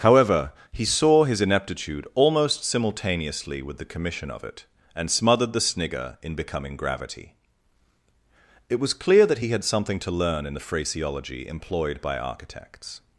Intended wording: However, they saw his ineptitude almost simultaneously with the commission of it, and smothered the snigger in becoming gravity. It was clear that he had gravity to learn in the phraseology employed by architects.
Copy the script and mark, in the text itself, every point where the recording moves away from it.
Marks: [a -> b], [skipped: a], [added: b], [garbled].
However, [they -> he] saw his ineptitude almost simultaneously with the commission of it, and smothered the snigger in becoming gravity. It was clear that he had [gravity -> something] to learn in the phraseology employed by architects.